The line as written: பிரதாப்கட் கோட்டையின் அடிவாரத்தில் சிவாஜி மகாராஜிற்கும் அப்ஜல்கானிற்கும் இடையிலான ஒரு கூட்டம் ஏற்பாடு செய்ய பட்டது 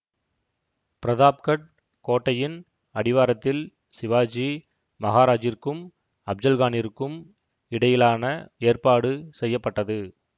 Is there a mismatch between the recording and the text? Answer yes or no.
yes